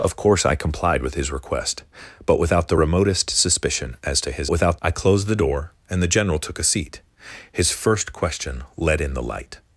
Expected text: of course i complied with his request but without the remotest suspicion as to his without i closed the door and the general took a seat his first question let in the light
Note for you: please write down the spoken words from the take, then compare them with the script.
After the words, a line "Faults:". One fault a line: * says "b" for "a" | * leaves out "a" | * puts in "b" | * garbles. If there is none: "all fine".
of course i complied with his request but without the remotest suspicion as to his without i closed the door and the general took a seat his first question let in the light
Faults:
all fine